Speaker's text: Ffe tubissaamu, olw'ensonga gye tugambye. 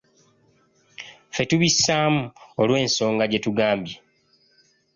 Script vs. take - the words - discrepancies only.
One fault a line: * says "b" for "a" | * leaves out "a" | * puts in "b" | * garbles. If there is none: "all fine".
all fine